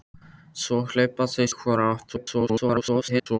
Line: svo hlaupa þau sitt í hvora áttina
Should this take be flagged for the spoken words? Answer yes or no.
yes